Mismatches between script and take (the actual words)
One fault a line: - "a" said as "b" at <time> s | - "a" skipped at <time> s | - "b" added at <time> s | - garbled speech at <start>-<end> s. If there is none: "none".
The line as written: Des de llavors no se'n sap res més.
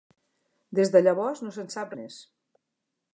- "res" skipped at 1.9 s